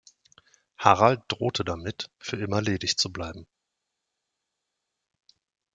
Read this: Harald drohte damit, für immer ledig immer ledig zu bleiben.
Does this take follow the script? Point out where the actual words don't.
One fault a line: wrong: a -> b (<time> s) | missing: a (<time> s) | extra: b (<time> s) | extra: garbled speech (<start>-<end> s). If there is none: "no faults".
missing: immer ledig (3.0 s)